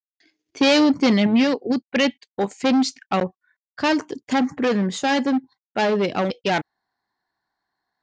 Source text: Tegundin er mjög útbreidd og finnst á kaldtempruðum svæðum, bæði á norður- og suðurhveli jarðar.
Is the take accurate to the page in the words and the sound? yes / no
no